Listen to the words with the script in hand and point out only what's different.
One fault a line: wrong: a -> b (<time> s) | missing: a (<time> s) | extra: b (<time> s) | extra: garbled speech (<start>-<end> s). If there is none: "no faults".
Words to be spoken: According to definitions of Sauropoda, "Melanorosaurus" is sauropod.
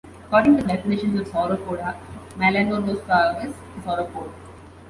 no faults